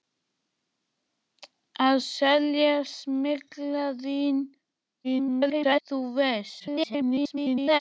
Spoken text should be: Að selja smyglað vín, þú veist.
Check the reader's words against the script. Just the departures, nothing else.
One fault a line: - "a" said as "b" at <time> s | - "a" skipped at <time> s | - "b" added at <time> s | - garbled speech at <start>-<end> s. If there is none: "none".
- garbled speech at 5.0-5.8 s
- garbled speech at 6.6-7.8 s